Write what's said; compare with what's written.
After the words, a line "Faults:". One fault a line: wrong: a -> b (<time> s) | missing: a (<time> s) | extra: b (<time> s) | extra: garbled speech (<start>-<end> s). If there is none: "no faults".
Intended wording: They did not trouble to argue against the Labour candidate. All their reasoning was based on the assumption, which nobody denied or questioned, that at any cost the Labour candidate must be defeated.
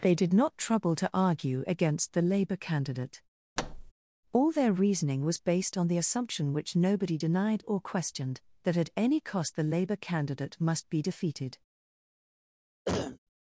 They did not trouble to argue against the Labour candidate. All their reasoning was based on the assumption, which nobody denied or questioned, that at any cost the Labour candidate must be defeated.
Faults:
no faults